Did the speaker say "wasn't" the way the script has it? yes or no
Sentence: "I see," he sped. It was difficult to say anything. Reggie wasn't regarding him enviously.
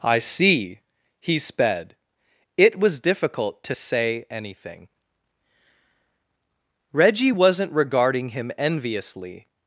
yes